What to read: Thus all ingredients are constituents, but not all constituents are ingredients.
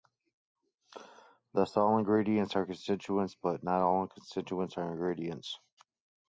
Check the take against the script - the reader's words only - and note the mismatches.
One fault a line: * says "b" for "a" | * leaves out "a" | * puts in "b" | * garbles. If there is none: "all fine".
all fine